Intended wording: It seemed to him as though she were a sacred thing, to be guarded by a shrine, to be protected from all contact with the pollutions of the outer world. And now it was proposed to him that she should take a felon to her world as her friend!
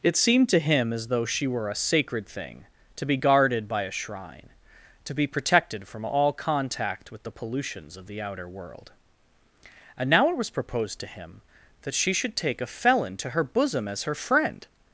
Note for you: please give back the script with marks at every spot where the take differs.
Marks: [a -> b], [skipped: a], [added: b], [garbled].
It seemed to him as though she were a sacred thing, to be guarded by a shrine, to be protected from all contact with the pollutions of the outer world. And now it was proposed to him that she should take a felon to her [world -> bosom] as her friend!